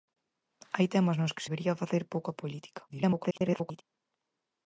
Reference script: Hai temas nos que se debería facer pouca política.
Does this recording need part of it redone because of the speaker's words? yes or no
yes